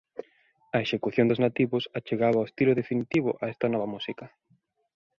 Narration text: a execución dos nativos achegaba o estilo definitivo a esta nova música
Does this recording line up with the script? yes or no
yes